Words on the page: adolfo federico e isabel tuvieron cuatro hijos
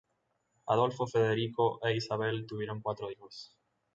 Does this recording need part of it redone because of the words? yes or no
no